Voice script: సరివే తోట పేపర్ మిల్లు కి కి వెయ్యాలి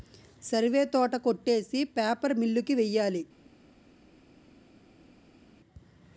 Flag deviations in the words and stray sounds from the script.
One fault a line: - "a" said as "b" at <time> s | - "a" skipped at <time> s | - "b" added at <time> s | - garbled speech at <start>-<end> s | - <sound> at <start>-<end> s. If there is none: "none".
- "కొట్టేసి" added at 1.2 s
- "కి" skipped at 2.8 s